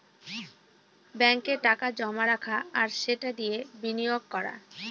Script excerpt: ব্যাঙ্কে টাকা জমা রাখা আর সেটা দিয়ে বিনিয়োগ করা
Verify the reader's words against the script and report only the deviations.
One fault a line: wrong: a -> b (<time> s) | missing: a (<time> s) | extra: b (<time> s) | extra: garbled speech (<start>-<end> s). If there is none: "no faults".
no faults